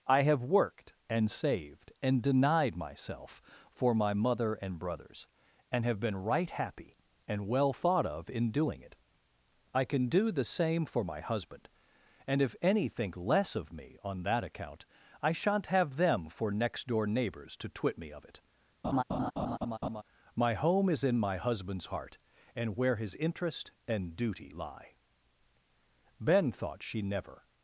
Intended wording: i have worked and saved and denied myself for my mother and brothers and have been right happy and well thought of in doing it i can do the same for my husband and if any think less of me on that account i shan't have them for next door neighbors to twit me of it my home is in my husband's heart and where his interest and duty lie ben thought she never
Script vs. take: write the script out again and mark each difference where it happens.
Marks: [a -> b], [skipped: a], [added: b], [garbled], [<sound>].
i have worked and saved and denied myself for my mother and brothers and have been right happy and well thought of in doing it i can do the same for my husband and if any think less of me on that account i shan't have them for next door neighbors to twit me of it [laugh] my home is in my husband's heart and where his interest and duty lie ben thought she never